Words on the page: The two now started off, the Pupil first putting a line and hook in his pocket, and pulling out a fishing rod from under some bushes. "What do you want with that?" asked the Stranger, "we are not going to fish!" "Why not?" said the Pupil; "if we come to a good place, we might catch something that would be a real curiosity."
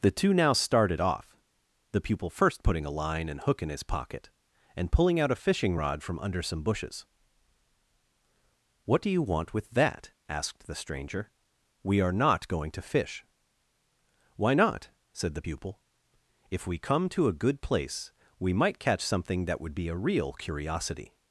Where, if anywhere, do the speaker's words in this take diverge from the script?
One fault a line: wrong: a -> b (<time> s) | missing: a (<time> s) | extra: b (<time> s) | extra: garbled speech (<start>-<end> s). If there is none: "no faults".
no faults